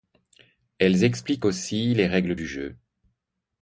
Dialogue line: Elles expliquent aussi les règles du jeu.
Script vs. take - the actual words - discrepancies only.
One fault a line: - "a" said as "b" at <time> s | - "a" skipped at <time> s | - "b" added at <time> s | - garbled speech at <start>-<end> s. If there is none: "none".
none